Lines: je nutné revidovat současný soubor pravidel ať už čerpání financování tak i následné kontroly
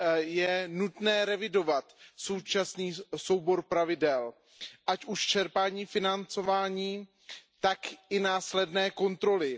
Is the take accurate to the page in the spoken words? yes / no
yes